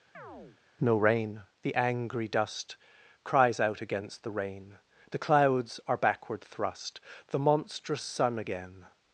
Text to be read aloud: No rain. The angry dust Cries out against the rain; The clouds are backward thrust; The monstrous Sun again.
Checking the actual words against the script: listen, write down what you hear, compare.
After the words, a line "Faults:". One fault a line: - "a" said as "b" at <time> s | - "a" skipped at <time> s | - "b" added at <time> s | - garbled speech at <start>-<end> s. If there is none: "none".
No rain. The angry dust Cries out against the rain; The clouds are backward thrust; The monstrous Sun again.
Faults:
none